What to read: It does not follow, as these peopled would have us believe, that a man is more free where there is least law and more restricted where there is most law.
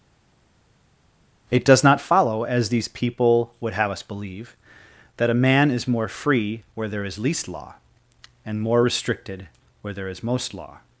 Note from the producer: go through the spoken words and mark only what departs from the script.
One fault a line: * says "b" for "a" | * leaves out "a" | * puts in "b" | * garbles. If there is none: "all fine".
* says "people" for "peopled"